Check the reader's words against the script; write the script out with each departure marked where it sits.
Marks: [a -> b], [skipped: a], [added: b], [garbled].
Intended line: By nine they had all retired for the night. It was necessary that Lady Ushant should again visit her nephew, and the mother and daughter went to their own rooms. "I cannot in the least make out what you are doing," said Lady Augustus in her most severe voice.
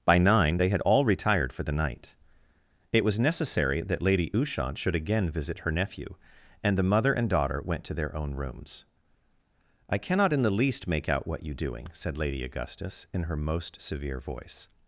By nine they had all retired for the night. It was necessary that Lady Ushant should again visit her nephew, and the mother and daughter went to their own rooms. "I cannot in the least make out what you [skipped: are] doing," said Lady Augustus in her most severe voice.